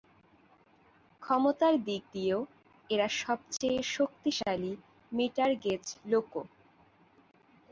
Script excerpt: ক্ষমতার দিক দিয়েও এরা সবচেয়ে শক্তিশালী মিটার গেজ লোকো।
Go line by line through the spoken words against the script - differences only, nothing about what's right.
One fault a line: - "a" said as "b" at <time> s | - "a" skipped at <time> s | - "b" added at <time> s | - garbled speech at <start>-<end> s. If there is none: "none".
none